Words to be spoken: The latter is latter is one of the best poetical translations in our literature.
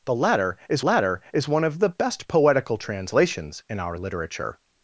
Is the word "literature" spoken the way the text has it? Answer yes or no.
yes